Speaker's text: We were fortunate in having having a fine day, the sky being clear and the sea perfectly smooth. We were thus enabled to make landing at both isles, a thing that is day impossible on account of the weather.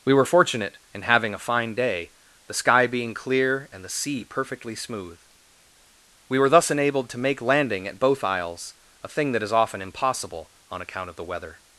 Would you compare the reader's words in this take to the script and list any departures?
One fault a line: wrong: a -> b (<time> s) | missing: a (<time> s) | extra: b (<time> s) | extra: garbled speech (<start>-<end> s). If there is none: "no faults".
missing: having (1.3 s)
wrong: day -> often (9.5 s)